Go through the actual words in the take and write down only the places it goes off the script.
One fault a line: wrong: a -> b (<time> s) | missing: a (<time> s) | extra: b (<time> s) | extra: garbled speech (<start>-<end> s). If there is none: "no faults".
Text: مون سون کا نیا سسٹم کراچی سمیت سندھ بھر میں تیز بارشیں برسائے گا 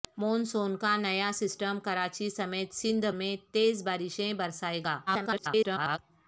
missing: بھر (3.0 s)
extra: garbled speech (5.1-6.0 s)